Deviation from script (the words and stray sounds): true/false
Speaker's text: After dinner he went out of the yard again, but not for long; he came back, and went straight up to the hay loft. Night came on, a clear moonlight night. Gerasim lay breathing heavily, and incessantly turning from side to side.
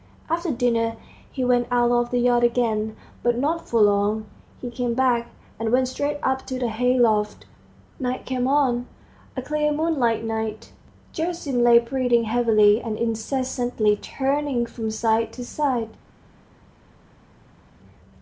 false